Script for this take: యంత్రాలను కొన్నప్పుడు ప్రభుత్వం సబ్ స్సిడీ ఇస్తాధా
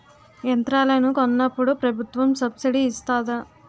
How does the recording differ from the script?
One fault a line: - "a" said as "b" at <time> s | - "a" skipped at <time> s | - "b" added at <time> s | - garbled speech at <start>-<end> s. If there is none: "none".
none